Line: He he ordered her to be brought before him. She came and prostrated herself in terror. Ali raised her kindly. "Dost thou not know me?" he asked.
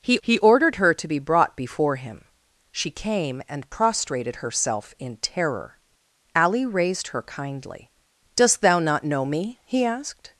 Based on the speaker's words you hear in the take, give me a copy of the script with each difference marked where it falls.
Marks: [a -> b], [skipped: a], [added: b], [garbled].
He he ordered her to be brought before him. She came and prostrated herself in terror. Ali raised her kindly. "Dost thou not know me?" he asked.